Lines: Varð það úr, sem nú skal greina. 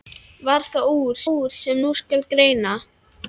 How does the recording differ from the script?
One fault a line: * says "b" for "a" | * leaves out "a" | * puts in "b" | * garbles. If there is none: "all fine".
* puts in "úr"